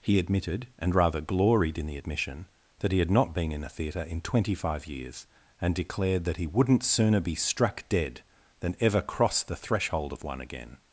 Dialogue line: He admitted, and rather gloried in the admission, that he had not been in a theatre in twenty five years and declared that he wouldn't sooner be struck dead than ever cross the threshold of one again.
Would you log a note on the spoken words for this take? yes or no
no